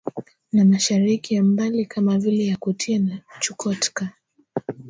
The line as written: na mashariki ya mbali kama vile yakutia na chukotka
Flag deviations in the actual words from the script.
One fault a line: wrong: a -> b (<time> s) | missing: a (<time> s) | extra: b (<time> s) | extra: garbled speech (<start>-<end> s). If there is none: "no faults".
no faults